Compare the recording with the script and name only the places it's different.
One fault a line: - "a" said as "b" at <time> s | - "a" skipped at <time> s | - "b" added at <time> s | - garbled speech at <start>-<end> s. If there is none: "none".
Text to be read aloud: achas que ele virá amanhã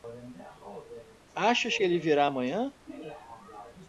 none